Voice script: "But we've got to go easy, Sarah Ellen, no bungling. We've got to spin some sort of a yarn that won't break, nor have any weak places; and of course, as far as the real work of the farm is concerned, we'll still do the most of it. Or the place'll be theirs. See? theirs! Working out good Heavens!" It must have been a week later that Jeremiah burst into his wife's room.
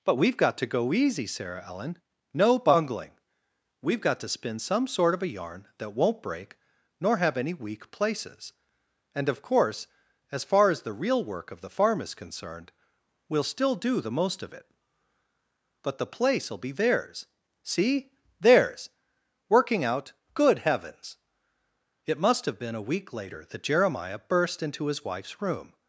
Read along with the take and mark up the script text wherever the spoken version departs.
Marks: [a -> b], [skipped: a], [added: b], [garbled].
"But we've got to go easy, Sarah Ellen, no bungling. We've got to spin some sort of a yarn that won't break, nor have any weak places; and of course, as far as the real work of the farm is concerned, we'll still do the most of it. [Or -> But] the place'll be theirs. See? theirs! Working out good Heavens!" It must have been a week later that Jeremiah burst into his wife's room.